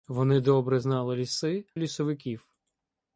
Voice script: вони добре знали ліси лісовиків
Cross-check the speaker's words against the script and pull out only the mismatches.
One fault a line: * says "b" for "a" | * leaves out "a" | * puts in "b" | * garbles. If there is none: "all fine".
all fine